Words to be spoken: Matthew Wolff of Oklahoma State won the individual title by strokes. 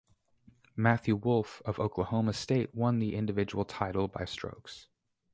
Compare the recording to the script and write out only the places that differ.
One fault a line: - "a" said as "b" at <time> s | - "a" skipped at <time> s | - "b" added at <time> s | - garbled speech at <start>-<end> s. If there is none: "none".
none